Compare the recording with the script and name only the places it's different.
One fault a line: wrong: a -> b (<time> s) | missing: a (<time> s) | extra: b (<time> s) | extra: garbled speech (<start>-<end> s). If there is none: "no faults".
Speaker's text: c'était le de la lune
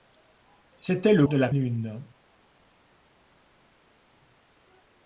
no faults